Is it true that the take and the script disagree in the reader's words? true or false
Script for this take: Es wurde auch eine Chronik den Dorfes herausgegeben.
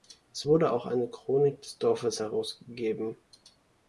true